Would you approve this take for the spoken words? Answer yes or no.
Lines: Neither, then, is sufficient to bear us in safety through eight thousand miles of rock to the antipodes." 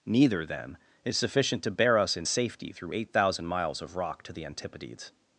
yes